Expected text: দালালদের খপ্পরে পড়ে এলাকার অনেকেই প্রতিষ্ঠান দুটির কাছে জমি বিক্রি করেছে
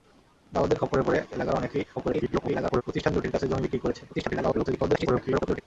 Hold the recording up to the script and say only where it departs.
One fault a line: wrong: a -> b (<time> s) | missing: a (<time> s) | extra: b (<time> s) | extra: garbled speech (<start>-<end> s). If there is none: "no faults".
extra: garbled speech (2.0-2.8 s)
extra: garbled speech (4.1-5.6 s)